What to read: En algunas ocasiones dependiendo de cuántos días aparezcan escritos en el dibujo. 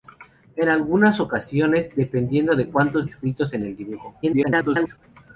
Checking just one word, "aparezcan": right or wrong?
wrong